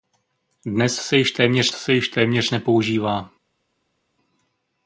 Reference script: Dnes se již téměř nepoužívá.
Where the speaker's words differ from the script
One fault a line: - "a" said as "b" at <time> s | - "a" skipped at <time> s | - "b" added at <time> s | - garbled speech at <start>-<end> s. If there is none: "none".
- "se již téměř" added at 1.7 s